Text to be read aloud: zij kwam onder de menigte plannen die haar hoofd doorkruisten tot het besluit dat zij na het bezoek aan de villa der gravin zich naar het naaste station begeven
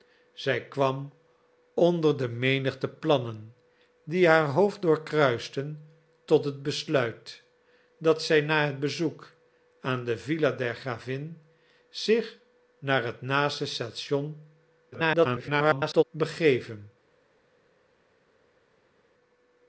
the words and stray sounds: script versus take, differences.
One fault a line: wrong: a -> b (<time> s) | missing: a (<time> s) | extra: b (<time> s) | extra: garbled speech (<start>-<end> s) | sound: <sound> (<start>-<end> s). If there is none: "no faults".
extra: garbled speech (14.9-16.0 s)